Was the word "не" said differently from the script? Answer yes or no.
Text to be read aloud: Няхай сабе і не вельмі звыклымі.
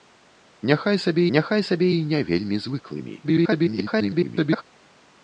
no